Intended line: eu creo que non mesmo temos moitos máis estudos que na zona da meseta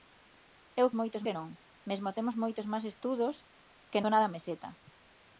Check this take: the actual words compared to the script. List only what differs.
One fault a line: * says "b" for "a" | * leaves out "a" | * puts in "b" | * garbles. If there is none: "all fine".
* says "moitos" for "creo"
* leaves out "na"